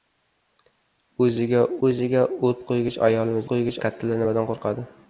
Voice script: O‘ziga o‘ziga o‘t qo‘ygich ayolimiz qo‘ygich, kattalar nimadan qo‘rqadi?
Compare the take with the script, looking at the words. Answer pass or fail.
pass